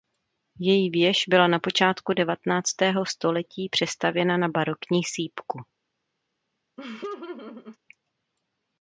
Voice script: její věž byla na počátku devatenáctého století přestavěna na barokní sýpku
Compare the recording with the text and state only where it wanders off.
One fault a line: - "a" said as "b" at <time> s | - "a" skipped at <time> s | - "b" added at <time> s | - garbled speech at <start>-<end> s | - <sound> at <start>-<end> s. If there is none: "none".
- laugh at 6.8-7.8 s